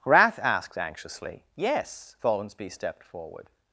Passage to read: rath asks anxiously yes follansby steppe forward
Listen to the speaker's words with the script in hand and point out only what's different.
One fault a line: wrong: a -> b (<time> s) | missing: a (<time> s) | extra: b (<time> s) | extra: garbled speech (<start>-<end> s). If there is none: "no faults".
wrong: asks -> asked (0.4 s)
wrong: steppe -> stepped (2.7 s)